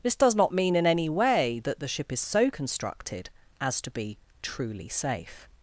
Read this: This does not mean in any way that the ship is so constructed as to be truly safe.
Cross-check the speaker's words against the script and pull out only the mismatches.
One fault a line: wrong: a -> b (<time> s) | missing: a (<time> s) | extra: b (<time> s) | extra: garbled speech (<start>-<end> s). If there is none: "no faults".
no faults